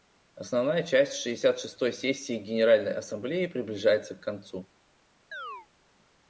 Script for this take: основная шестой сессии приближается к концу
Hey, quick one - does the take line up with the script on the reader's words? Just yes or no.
no